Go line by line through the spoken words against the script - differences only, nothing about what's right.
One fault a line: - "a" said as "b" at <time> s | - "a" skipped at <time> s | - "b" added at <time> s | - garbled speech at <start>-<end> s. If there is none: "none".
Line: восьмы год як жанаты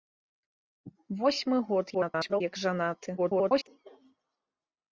- garbled speech at 1.9-2.4 s
- garbled speech at 3.2-3.7 s